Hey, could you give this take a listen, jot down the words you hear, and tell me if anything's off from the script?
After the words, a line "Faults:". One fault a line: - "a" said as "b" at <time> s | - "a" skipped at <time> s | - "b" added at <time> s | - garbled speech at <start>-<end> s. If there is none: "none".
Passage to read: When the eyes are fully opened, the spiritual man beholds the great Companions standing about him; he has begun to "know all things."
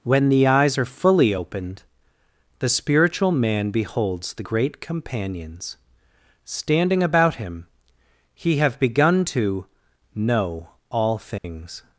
When the eyes are fully opened, the spiritual man beholds the great Companions standing about him; he have begun to "know all things."
Faults:
- "has" said as "have" at 8.6 s